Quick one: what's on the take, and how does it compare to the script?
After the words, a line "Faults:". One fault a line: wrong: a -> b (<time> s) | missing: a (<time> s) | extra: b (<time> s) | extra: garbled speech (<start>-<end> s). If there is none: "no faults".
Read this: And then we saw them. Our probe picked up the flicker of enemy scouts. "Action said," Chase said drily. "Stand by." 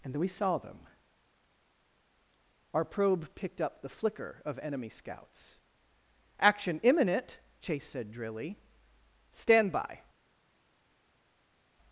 And then we saw them. Our probe picked up the flicker of enemy scouts. "Action imminent," Chase said drily. "Stand by."
Faults:
wrong: said -> imminent (6.8 s)